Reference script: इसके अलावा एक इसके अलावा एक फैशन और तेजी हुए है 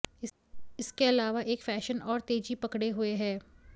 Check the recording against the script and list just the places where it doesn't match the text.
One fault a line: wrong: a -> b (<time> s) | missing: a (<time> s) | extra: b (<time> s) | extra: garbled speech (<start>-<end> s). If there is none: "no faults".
missing: इसके अलावा एक (1.6 s)
extra: पकड़े (2.6 s)